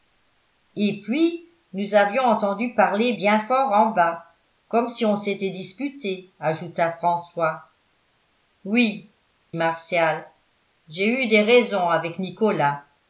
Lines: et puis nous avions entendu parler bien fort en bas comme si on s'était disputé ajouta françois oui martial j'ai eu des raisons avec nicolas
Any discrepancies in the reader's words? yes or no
no